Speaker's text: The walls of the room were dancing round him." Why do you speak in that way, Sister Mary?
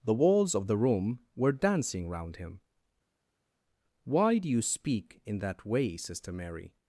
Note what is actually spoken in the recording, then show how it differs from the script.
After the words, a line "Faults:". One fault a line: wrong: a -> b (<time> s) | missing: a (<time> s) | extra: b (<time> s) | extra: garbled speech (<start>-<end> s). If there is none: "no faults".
The walls of the room were dancing round him." Why do you speak in that way, Sister Mary?
Faults:
no faults